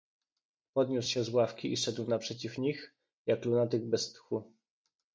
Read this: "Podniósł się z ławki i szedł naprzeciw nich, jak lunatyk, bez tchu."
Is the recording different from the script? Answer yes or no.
no